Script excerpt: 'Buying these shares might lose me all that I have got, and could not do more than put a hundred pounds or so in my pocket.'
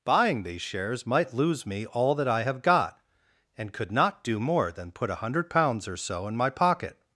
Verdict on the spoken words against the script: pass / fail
pass